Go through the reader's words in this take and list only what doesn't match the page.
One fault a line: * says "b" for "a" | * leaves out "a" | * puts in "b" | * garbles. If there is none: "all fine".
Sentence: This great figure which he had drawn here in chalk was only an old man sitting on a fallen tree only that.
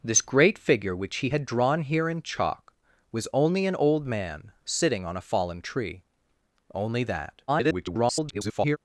* garbles